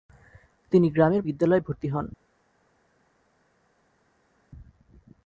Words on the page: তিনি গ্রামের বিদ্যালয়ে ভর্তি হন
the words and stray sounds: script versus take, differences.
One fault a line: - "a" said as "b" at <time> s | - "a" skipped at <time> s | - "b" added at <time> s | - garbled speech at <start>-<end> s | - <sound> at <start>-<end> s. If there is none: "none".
none